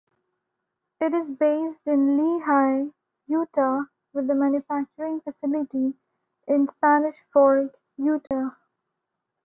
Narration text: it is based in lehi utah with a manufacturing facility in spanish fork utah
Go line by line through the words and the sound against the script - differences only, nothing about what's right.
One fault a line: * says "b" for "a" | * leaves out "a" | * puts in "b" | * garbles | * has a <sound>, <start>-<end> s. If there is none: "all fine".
* has a dropout, 8.3-8.3 s